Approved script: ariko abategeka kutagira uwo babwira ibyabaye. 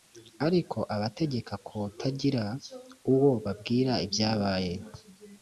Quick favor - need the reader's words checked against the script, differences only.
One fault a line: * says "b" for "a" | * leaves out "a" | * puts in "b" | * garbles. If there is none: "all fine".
all fine